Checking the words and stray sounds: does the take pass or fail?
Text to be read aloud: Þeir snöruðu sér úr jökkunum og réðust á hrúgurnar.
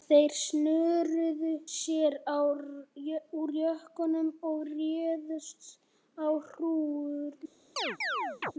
fail